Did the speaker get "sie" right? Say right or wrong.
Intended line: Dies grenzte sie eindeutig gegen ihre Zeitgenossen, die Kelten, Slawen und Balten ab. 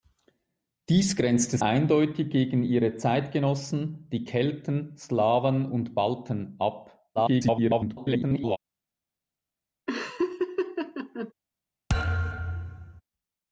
wrong